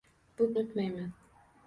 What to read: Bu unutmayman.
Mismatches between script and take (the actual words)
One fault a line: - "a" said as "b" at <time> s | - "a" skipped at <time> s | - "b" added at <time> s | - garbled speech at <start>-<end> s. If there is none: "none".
none